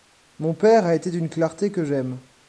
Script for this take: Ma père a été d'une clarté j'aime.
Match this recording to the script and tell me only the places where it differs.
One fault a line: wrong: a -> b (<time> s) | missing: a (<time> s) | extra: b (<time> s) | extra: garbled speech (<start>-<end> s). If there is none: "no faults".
wrong: Ma -> Mon (0.4 s)
extra: que (1.7 s)